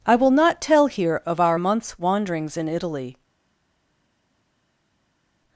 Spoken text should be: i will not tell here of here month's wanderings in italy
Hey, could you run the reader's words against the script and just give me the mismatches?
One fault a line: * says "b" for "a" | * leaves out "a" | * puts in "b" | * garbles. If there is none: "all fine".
* says "our" for "here"